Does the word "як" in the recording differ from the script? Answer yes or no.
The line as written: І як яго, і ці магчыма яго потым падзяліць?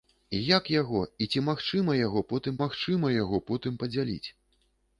no